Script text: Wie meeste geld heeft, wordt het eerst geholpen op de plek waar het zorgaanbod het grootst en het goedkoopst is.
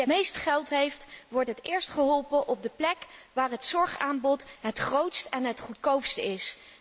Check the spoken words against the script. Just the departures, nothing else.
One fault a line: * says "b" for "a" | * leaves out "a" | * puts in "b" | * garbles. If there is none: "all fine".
all fine